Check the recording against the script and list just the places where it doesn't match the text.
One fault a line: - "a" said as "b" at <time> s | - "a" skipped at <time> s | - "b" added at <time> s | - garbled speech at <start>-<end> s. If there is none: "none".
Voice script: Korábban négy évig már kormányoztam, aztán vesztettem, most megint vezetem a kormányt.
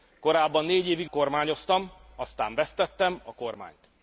- "már" skipped at 1.1 s
- "most megint vezetem" skipped at 3.2 s